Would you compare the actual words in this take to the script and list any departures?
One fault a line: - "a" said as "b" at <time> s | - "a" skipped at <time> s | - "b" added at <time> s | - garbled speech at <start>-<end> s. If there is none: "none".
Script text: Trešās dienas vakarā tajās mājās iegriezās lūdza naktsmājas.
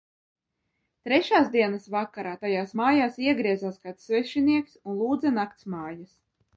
- "kāds svešinieks un" added at 3.9 s